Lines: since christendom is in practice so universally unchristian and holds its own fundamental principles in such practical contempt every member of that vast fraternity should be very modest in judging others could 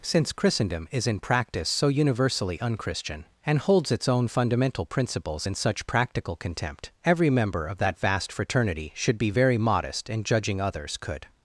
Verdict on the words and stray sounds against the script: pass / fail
pass